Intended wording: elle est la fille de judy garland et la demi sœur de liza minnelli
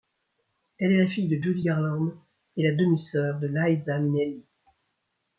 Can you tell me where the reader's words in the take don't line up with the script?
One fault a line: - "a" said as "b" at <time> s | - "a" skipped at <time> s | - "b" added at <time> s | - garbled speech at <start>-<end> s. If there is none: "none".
none